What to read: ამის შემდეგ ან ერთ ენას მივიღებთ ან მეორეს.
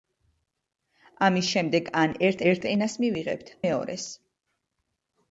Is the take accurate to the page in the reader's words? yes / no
no